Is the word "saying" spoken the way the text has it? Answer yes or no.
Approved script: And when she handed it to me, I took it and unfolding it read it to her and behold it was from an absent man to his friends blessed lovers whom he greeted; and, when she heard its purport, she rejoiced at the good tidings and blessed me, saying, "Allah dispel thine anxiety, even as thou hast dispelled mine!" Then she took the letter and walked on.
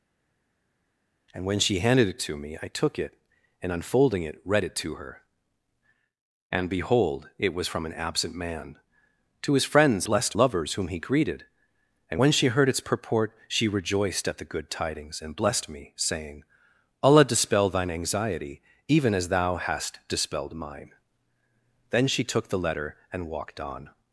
yes